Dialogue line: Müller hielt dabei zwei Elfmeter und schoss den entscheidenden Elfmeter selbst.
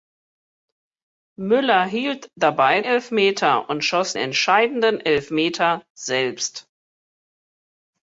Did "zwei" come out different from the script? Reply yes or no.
yes